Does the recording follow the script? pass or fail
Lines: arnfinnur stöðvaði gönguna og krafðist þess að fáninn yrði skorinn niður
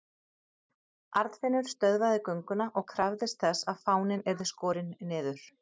pass